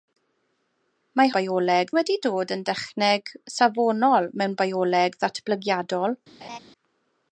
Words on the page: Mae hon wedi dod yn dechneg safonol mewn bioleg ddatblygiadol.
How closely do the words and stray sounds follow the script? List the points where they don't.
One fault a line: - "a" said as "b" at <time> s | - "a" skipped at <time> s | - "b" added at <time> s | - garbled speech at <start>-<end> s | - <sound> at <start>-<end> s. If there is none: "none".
- "hon" said as "bioleg" at 1.4 s
- laugh at 6.4-6.6 s